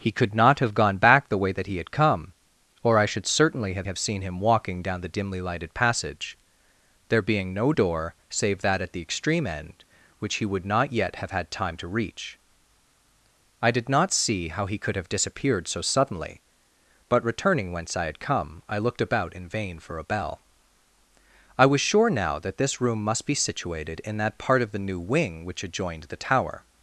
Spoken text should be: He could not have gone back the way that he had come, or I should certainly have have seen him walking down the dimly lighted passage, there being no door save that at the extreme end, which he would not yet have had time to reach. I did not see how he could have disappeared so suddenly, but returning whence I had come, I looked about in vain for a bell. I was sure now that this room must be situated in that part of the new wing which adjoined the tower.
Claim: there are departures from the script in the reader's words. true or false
false